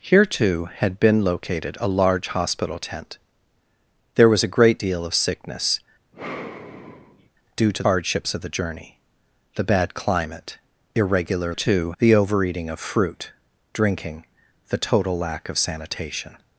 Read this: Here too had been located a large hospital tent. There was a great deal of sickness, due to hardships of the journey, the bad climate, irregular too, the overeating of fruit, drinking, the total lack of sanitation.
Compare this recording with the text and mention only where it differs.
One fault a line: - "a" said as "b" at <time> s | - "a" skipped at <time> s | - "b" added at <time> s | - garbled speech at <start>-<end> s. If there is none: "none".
none